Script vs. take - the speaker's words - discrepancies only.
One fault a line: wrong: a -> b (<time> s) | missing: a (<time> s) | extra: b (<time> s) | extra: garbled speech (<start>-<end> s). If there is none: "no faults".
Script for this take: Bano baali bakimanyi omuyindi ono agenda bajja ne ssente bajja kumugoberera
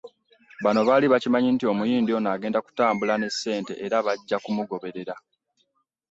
extra: nti (1.5 s)
wrong: bajja -> kutambula (2.6 s)
extra: era (3.9 s)